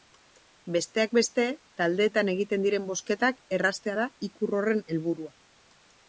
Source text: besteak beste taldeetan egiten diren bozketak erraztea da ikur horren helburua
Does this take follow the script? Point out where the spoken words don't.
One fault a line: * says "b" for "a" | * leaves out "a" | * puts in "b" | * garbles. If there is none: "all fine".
all fine